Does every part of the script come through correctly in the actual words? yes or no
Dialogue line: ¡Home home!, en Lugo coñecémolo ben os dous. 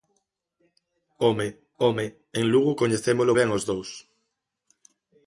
yes